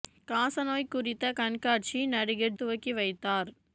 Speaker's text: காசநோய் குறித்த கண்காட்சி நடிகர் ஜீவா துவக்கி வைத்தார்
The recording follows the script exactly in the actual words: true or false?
false